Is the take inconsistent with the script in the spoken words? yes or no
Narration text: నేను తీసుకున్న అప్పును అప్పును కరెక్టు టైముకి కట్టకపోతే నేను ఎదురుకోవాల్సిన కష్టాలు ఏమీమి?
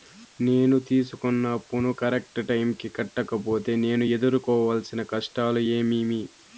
yes